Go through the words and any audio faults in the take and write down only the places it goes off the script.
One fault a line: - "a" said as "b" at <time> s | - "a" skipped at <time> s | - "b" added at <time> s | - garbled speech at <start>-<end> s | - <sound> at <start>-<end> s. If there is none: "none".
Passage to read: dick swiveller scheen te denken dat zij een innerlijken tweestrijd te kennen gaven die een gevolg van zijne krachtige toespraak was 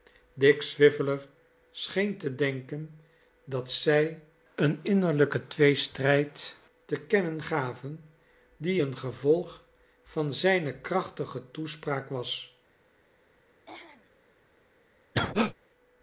- throat clearing at 13.7-14.1 s
- cough at 15.1-15.5 s